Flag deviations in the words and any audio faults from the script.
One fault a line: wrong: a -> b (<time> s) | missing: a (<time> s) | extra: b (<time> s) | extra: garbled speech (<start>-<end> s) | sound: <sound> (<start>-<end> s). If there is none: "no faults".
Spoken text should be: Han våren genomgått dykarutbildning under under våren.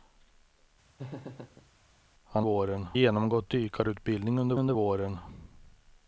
sound: laugh (1.0-1.7 s)